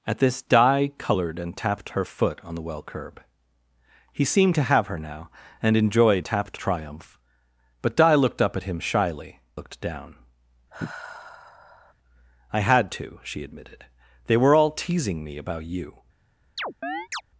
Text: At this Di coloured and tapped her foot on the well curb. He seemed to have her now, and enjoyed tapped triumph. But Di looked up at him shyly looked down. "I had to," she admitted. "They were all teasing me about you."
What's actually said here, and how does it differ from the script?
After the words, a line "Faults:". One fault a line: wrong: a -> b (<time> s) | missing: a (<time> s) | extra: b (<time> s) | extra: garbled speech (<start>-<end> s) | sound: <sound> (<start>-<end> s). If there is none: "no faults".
At this Di coloured and tapped her foot on the well curb. He seemed to have her now, and enjoyed tapped triumph. But Di looked up at him shyly looked down. "I had to," she admitted. "They were all teasing me about you."
Faults:
sound: sigh (10.7-11.9 s)
sound: chirp (16.6-17.2 s)